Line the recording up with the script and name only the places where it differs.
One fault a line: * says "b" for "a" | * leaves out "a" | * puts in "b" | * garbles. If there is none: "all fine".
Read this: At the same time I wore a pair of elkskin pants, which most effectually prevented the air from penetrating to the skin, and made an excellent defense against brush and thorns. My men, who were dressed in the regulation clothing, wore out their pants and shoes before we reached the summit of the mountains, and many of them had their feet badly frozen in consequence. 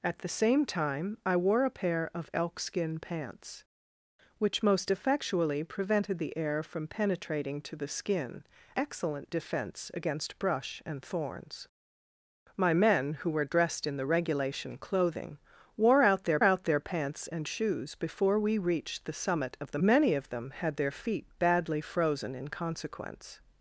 * leaves out "and made an"
* puts in "out their"
* leaves out "mountains and"